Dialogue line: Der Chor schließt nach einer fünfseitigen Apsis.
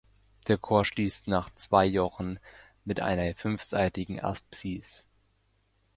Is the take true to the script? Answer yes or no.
no